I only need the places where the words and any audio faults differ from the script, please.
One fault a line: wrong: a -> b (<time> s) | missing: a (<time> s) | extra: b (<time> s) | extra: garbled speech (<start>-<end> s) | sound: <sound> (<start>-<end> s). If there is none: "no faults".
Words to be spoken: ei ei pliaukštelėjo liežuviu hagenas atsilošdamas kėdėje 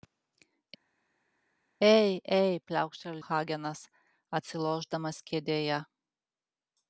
missing: liežuviu (3.2 s)